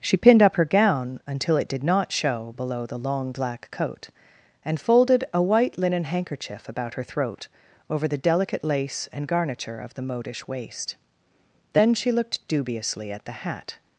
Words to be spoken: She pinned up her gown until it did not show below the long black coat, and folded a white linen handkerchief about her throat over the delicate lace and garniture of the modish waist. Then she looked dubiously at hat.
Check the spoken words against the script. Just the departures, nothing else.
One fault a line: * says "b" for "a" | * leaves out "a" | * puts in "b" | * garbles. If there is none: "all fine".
* puts in "the"